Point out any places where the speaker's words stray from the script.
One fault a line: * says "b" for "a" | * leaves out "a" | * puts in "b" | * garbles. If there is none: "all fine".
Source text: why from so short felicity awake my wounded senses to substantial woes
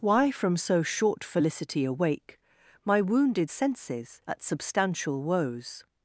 * says "at" for "to"